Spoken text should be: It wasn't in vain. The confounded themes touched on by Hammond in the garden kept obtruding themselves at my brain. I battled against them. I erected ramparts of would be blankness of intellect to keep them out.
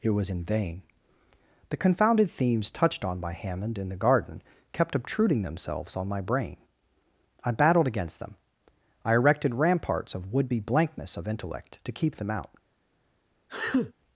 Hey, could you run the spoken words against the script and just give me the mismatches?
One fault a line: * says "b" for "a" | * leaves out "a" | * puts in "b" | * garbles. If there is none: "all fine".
* says "was" for "wasn't"
* says "on" for "at"